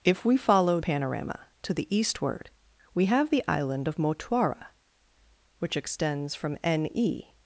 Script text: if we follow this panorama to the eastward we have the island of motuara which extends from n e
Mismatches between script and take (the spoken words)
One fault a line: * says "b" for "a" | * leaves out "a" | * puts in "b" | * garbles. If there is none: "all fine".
* leaves out "this"